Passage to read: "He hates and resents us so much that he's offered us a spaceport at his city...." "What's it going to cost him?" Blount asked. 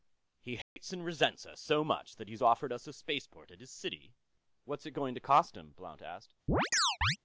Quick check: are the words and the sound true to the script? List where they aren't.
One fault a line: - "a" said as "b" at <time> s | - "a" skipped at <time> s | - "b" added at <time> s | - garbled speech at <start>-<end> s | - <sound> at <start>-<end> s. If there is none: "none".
- dropout at 0.6-0.8 s
- chirp at 6.5-7.2 s